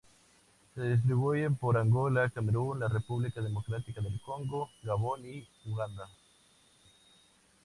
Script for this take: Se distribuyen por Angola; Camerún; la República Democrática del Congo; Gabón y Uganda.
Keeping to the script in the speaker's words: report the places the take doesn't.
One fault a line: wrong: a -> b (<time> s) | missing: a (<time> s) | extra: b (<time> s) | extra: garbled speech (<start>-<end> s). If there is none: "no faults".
no faults